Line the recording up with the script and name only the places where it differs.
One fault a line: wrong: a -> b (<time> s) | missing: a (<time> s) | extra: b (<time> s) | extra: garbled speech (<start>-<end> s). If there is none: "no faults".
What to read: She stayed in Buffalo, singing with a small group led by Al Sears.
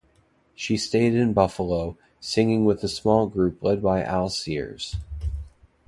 no faults